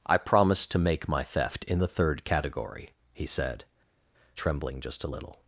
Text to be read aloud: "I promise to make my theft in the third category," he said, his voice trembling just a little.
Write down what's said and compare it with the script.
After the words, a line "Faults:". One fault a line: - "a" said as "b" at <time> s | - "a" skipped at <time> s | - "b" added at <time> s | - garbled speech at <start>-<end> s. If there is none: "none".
"I promise to make my theft in the third category," he said, trembling just a little.
Faults:
- "his voice" skipped at 3.6 s